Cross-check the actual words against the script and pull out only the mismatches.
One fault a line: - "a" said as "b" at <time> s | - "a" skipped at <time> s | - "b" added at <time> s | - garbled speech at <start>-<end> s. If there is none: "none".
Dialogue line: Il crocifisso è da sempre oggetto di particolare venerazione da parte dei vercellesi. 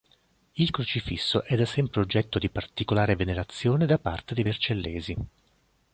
none